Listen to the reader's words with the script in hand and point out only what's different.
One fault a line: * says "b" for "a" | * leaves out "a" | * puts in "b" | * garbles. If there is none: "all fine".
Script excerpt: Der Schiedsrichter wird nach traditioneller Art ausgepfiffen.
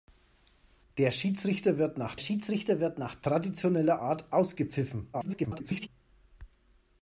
* puts in "Schiedsrichter wird nach"
* garbles